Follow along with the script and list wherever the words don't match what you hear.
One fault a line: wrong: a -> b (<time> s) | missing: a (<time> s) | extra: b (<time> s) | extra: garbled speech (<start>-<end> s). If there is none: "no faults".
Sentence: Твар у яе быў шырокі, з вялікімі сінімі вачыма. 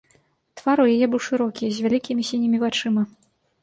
no faults